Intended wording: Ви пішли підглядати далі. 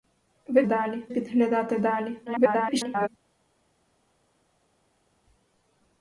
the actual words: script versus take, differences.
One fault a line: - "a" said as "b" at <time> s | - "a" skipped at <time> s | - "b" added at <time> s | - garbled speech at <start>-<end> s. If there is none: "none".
- "пішли" said as "далі" at 0.7 s
- garbled speech at 2.3-3.1 s